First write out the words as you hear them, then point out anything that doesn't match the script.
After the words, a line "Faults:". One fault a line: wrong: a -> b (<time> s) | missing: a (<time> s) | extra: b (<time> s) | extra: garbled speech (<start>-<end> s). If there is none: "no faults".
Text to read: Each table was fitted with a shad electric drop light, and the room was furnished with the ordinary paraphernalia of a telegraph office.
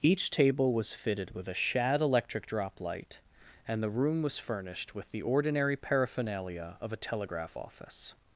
Each table was fitted with a shad electric drop light, and the room was furnished with the ordinary paraphernalia of a telegraph office.
Faults:
no faults